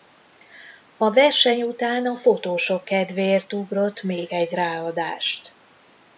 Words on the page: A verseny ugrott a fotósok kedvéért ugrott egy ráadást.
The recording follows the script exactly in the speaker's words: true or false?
false